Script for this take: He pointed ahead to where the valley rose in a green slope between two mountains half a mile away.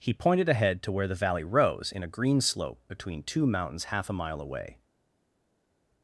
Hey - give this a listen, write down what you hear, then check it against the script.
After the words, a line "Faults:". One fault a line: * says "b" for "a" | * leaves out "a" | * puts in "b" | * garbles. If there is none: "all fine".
He pointed ahead to where the valley rose in a green slope between two mountains half a mile away.
Faults:
all fine